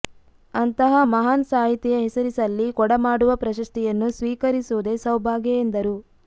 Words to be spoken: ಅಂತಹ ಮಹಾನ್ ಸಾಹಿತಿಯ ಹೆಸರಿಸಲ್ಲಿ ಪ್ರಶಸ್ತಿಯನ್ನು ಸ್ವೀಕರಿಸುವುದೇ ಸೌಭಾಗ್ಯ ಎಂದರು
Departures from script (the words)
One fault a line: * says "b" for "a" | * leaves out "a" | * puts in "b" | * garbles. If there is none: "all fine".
* puts in "ಕೊಡಮಾಡುವ"